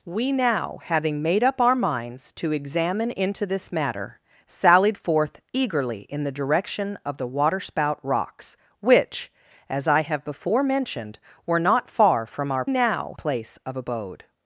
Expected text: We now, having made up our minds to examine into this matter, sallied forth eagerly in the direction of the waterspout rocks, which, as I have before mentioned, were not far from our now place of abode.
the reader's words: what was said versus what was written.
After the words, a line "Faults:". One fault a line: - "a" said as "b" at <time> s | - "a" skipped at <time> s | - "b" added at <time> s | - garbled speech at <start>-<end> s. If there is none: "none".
We now, having made up our minds to examine into this matter, sallied forth eagerly in the direction of the waterspout rocks, which, as I have before mentioned, were not far from our now place of abode.
Faults:
none